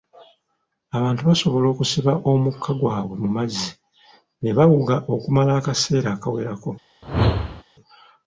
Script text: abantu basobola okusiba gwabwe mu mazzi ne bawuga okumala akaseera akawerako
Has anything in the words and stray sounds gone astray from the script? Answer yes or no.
yes